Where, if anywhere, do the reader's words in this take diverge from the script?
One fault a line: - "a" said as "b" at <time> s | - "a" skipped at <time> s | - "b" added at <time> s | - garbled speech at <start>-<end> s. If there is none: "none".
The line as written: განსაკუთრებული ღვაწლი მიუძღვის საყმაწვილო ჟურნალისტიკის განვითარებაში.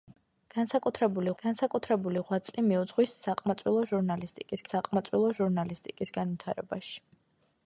- "განსაკუთრებული" added at 1.4 s
- "საყმაწვილო ჟურნალისტიკის" added at 4.7 s